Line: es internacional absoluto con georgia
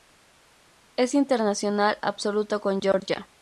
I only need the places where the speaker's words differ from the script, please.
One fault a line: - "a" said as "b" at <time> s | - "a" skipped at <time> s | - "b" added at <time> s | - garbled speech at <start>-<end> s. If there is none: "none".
none